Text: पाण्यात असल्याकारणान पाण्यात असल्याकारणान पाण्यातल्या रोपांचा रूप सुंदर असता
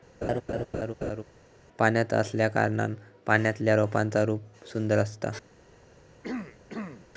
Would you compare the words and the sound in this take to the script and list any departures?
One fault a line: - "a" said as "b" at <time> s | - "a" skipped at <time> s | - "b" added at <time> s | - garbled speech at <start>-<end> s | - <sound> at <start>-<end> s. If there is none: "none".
- laugh at 0.2-1.2 s
- "पाण्यात असल्याकारणान" skipped at 2.9 s
- throat clearing at 6.2-7.1 s